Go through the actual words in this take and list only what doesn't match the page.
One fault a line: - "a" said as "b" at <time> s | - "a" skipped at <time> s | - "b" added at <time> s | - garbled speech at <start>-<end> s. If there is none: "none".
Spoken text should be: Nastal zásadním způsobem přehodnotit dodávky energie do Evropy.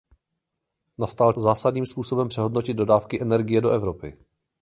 none